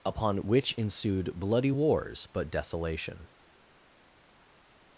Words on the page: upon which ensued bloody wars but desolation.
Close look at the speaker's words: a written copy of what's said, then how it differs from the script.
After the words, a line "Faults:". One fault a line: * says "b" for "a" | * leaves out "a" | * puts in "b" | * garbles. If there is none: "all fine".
upon which ensued bloody wars but desolation.
Faults:
all fine